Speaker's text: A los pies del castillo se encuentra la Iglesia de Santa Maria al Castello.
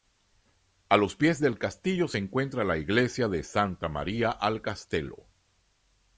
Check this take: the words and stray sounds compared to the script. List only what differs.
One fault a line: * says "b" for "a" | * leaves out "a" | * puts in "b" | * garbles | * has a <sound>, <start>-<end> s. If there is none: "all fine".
all fine